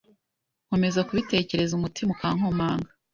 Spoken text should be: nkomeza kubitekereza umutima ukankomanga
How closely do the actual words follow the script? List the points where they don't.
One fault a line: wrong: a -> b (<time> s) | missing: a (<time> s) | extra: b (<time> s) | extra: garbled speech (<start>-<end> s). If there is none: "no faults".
no faults